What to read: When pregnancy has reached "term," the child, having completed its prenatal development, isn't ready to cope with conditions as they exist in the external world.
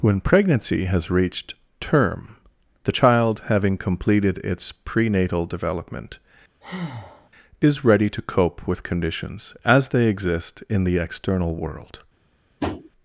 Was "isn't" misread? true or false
true